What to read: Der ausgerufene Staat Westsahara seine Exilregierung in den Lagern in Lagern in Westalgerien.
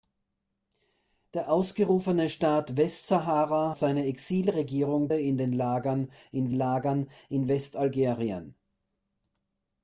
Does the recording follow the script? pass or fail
pass